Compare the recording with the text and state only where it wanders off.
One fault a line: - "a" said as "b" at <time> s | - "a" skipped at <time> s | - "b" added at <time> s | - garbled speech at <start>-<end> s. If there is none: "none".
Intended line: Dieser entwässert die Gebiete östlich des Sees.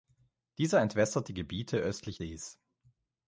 - "des" skipped at 2.2 s